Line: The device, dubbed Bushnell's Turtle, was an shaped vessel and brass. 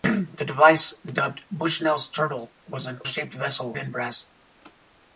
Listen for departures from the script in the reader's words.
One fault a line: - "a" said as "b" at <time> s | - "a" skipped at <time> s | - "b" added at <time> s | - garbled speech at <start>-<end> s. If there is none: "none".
none